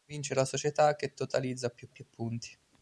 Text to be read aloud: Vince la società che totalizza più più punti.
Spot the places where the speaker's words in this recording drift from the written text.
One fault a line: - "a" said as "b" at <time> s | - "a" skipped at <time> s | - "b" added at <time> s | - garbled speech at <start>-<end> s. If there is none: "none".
none